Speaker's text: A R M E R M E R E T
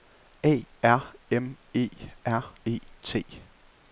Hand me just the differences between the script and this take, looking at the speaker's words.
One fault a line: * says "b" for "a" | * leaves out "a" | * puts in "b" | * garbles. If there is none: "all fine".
* leaves out "M E R"